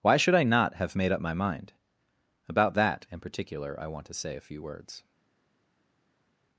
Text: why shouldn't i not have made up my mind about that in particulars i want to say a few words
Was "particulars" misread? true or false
true